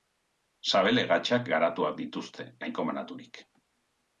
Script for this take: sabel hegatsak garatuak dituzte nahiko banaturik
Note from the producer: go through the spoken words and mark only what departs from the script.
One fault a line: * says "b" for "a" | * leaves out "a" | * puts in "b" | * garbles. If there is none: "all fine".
all fine